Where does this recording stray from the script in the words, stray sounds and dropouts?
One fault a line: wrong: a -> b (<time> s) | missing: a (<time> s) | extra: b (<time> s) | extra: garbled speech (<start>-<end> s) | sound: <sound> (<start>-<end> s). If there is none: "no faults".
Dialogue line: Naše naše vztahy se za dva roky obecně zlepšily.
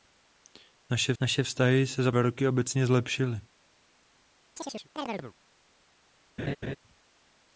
sound: chirp (4.6-5.3 s)
sound: laugh (6.4-6.8 s)